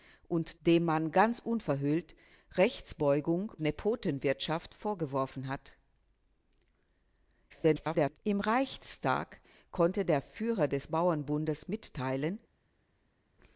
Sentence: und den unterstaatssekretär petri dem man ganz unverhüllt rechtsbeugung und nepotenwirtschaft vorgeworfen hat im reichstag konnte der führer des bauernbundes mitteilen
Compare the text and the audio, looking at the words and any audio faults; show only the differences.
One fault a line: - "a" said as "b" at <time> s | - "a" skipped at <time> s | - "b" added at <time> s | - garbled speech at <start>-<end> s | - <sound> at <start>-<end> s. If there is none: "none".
- "den unterstaatssekretär petri" skipped at 0.6 s
- "und" skipped at 3.5 s
- garbled speech at 7.5-8.2 s